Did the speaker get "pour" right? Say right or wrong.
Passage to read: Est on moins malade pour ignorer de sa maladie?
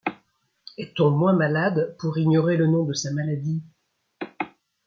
right